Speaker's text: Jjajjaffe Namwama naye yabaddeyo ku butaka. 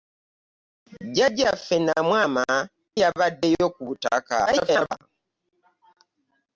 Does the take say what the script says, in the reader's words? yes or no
no